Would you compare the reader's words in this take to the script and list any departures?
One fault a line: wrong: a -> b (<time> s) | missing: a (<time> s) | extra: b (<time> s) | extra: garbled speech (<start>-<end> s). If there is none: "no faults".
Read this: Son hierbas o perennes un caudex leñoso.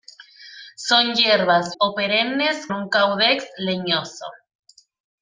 no faults